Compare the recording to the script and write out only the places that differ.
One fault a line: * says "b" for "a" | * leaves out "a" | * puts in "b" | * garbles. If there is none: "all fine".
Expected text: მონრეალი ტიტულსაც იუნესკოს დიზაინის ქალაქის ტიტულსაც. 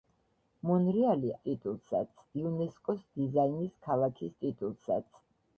all fine